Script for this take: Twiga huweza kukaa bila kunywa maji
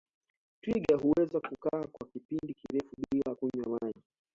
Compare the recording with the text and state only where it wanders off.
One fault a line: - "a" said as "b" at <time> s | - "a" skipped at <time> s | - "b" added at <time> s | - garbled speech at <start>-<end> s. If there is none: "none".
- "kwa kipindi kirefu" added at 1.9 s